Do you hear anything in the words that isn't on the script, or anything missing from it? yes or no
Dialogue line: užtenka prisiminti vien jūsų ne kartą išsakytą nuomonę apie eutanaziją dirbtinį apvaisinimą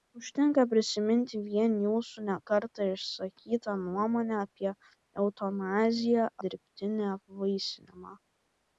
no